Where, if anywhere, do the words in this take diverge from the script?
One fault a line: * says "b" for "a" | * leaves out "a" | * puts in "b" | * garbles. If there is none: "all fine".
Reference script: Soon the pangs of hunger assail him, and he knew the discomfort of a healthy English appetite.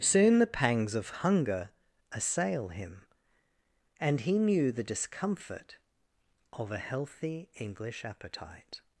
all fine